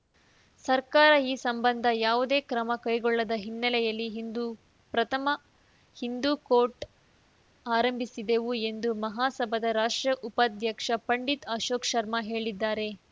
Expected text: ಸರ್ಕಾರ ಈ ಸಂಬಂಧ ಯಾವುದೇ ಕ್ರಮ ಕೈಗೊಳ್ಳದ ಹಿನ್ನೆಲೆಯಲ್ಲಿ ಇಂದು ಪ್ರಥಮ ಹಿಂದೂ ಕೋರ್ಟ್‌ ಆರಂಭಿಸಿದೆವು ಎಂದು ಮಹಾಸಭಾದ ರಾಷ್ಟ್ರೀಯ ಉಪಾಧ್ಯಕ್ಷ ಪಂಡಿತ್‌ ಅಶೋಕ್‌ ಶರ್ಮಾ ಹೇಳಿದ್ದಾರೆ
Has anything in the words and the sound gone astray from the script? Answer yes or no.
no